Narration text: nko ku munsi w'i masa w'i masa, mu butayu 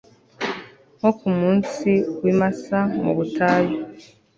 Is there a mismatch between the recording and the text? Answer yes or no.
yes